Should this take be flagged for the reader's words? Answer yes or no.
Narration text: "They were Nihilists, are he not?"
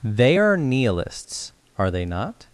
yes